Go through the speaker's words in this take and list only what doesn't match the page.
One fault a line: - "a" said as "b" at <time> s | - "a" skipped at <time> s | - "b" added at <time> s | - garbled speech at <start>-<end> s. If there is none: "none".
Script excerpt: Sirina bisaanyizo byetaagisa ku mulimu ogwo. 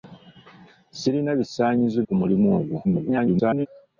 - "byetaagisa" skipped at 2.0 s
- garbled speech at 2.8-3.7 s